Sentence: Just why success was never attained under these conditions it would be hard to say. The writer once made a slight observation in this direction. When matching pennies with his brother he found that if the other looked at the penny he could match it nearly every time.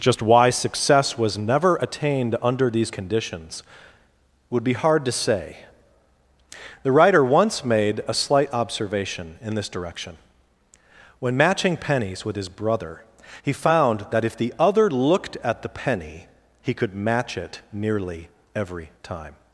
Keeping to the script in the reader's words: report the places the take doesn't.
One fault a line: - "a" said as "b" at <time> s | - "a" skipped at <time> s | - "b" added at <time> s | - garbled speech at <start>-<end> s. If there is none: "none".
- "it" skipped at 3.6 s